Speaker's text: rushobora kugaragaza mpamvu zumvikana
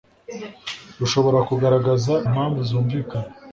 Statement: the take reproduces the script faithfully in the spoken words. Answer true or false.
true